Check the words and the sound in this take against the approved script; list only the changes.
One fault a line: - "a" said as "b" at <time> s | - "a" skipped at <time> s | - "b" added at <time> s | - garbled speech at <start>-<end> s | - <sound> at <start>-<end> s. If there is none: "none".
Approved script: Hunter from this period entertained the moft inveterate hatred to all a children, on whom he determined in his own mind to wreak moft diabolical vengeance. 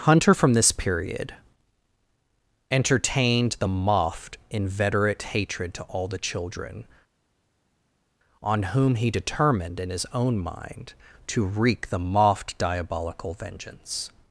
- "a" said as "the" at 6.1 s
- "the" added at 11.9 s